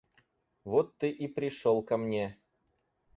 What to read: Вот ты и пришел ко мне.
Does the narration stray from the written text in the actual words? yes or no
no